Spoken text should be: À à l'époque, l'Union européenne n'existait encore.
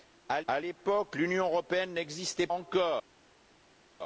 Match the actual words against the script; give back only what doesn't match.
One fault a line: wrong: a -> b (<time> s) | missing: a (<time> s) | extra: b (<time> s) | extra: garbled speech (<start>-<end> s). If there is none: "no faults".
no faults